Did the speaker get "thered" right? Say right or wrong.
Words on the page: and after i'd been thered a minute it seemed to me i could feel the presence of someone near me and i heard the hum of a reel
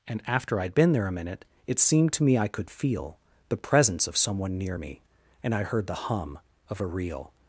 wrong